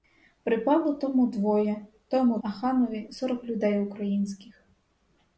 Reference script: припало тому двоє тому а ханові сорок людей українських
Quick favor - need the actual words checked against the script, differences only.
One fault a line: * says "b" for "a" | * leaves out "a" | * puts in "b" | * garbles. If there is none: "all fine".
all fine